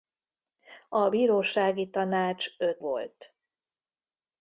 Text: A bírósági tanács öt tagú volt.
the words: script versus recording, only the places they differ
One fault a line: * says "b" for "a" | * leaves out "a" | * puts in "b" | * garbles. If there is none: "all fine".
* leaves out "tagú"